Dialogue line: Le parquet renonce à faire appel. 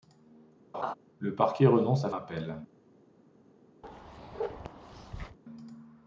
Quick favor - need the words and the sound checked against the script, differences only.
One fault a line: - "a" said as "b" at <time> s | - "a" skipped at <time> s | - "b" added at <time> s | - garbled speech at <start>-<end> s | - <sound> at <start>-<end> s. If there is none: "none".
- laugh at 0.7-0.9 s
- "faire" skipped at 2.1 s
- bark at 3.8-5.4 s